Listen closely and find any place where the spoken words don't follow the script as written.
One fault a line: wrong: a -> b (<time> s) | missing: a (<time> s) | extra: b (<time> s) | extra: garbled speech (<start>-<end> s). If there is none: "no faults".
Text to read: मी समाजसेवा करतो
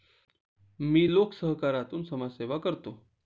extra: लोकसहकारातून (1.1 s)